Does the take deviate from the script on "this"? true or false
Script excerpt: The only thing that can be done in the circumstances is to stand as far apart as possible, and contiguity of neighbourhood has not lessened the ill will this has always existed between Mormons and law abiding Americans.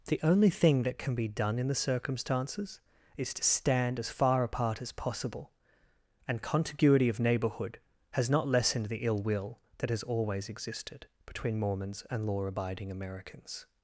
true